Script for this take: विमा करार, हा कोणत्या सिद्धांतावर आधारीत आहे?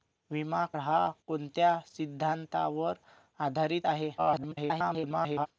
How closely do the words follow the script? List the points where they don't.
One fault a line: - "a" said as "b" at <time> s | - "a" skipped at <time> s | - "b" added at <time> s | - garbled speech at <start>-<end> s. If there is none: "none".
- "करार" skipped at 0.7 s
- garbled speech at 4.2-5.5 s